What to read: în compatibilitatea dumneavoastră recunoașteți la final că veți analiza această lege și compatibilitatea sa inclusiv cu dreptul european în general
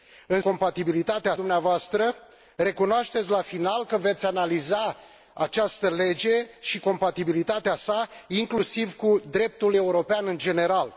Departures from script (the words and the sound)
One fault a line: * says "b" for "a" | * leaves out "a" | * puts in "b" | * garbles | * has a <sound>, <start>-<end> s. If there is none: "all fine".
all fine